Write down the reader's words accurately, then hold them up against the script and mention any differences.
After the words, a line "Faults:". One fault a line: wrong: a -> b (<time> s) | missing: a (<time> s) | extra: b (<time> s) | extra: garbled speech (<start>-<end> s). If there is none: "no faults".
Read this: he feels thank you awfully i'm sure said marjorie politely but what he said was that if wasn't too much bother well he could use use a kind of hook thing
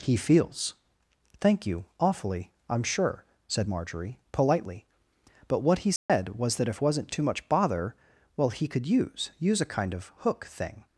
he feels thank you awfully i'm sure said marjorie politely but what he said was that if wasn't too much bother well he could use use a kind of hook thing
Faults:
no faults